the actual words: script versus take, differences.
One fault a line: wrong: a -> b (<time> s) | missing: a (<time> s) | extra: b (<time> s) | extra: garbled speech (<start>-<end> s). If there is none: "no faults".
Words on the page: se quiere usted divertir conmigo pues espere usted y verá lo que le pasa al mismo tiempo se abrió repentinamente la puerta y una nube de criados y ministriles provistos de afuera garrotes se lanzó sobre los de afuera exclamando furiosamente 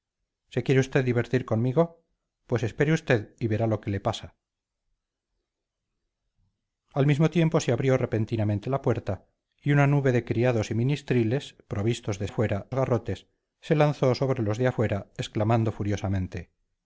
no faults